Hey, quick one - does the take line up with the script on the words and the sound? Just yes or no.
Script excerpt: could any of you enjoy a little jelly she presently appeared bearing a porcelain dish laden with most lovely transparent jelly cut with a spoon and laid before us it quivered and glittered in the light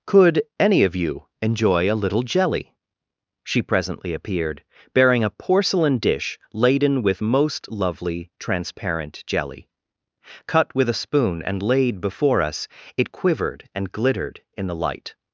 yes